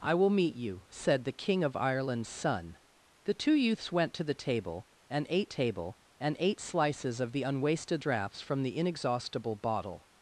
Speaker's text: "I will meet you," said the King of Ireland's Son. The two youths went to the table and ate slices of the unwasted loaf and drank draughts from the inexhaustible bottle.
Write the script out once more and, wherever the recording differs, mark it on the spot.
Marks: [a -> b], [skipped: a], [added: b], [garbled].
"I will meet you," said the King of Ireland's Son. The two youths went to the table and ate [added: table and ate] slices of the unwasted [skipped: loaf and drank] draughts from the inexhaustible bottle.